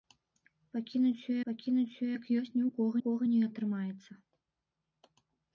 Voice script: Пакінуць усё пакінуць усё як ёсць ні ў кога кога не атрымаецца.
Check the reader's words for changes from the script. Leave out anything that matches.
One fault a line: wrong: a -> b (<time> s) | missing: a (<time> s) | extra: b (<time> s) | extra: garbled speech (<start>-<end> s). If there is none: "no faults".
no faults